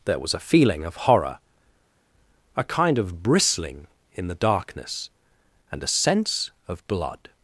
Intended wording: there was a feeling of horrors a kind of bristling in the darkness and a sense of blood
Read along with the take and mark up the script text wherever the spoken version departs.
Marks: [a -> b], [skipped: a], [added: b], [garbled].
there was a feeling of [horrors -> horror] a kind of bristling in the darkness and a sense of blood